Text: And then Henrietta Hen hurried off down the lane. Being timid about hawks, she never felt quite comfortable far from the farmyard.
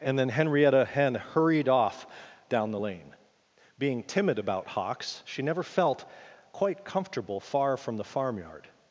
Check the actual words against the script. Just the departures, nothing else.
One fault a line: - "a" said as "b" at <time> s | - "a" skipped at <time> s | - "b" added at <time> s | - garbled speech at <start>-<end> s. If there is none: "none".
none